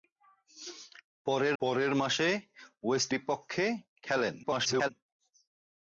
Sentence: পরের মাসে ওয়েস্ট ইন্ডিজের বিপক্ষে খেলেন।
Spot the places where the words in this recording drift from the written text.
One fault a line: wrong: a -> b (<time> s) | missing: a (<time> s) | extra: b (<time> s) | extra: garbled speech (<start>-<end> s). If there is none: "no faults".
extra: পরের (1.6 s)
missing: ইন্ডিজের (3.1 s)
extra: garbled speech (4.4-4.9 s)